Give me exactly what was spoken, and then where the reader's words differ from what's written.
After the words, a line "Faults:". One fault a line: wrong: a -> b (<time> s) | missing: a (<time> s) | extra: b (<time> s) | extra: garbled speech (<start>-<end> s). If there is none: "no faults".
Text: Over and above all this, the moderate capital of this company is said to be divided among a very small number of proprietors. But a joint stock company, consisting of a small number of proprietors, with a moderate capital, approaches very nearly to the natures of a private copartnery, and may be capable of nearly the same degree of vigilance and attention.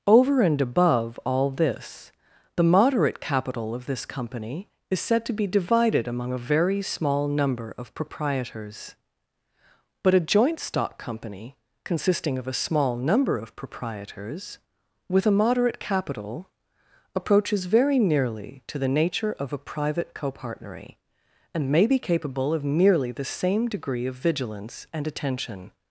Over and above all this, the moderate capital of this company is said to be divided among a very small number of proprietors. But a joint stock company, consisting of a small number of proprietors, with a moderate capital, approaches very nearly to the nature of a private copartnery, and may be capable of nearly the same degree of vigilance and attention.
Faults:
wrong: natures -> nature (18.9 s)